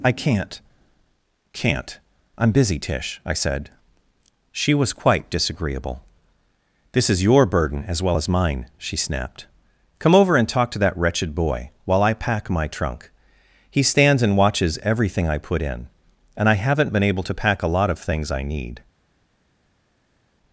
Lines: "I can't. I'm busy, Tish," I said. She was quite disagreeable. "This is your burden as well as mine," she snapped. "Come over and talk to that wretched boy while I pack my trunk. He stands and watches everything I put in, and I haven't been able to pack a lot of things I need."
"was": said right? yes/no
yes